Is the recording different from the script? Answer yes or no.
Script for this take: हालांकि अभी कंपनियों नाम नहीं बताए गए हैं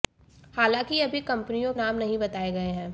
no